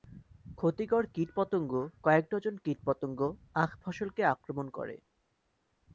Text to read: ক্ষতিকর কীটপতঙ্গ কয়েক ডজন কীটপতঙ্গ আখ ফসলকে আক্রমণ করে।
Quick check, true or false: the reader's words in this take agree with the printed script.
true